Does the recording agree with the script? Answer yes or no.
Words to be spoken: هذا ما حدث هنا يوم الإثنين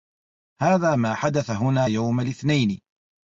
yes